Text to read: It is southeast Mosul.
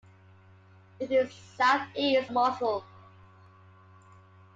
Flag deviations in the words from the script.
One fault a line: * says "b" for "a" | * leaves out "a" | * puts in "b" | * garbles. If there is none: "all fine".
all fine